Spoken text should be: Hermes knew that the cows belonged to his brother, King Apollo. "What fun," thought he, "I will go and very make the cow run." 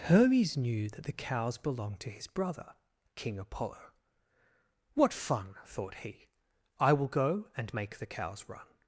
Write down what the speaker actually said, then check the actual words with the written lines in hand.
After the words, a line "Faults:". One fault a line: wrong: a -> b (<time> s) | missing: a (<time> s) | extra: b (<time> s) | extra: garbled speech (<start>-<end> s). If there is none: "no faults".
Hermes knew that the cows belonged to his brother, King Apollo. "What fun," thought he, "I will go and make the cows run."
Faults:
missing: very (7.7 s)
wrong: cow -> cows (8.1 s)